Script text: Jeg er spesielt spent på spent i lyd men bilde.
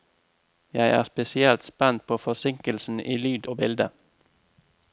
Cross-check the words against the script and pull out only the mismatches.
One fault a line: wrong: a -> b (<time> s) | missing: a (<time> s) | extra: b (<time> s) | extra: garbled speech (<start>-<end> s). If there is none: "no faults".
wrong: spent -> forsinkelsen (2.2 s)
wrong: men -> og (3.4 s)